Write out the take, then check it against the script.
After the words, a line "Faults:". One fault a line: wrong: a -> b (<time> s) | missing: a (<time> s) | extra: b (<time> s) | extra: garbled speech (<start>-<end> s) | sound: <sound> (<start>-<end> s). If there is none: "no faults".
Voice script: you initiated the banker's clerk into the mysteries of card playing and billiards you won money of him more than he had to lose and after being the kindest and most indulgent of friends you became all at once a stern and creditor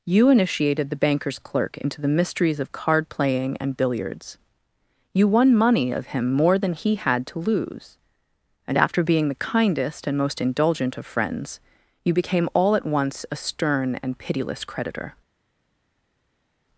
you initiated the banker's clerk into the mysteries of card playing and billiards you won money of him more than he had to lose and after being the kindest and most indulgent of friends you became all at once a stern and pitiless creditor
Faults:
extra: pitiless (14.2 s)